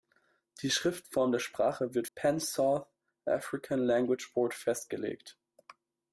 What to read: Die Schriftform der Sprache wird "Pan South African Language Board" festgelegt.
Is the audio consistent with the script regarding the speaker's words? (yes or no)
yes